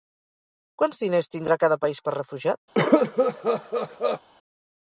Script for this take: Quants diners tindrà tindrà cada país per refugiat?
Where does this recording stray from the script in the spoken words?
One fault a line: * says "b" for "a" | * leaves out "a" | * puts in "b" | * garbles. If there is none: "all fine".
* leaves out "tindrà"